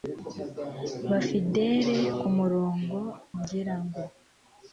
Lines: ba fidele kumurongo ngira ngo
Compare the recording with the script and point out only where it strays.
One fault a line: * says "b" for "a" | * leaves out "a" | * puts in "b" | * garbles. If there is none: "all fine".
all fine